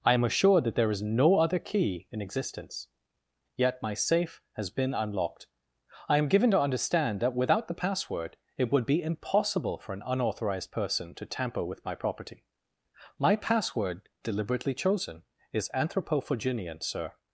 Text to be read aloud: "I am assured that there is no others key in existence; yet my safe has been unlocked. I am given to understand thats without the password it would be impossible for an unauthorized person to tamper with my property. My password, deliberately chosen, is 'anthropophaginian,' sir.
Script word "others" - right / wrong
wrong